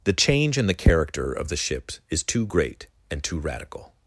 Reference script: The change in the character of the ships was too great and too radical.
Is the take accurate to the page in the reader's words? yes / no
no